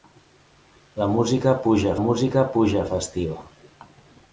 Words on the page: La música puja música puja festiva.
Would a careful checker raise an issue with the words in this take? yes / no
no